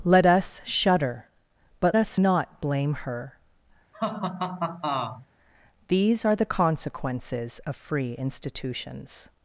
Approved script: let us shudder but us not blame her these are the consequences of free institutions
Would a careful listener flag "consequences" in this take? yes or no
no